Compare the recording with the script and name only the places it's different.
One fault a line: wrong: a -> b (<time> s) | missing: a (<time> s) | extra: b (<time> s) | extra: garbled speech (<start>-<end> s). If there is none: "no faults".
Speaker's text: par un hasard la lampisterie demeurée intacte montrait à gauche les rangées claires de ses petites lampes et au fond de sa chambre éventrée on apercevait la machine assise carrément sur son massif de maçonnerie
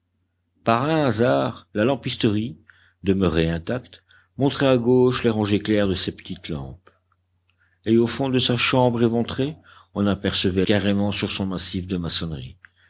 missing: la machine assise (10.6 s)